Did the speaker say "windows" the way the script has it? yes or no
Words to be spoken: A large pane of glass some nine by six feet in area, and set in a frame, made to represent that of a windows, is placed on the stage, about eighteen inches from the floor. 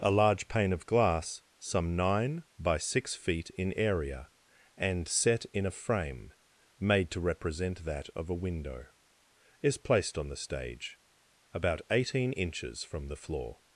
no